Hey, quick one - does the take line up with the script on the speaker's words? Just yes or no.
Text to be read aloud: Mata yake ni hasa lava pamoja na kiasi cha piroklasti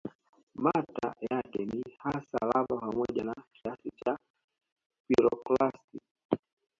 yes